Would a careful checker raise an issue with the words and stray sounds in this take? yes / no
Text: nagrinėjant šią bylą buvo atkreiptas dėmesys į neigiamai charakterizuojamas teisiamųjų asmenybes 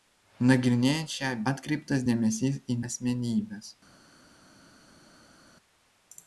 yes